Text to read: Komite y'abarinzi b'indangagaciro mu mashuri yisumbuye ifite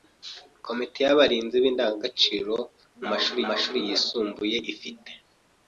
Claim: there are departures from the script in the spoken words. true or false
true